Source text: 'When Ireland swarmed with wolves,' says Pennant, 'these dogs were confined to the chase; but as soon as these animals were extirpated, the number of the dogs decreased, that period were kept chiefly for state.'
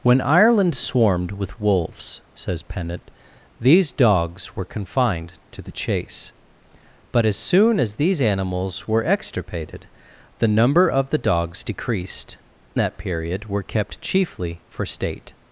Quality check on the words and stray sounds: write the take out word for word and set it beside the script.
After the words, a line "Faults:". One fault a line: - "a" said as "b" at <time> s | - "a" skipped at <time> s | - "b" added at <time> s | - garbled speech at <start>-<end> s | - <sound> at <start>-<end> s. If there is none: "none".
'When Ireland swarmed with wolves,' says Pennant, 'these dogs were confined to the chase; but as soon as these animals were extirpated, the number of the dogs decreased, that period were kept chiefly for state.'
Faults:
none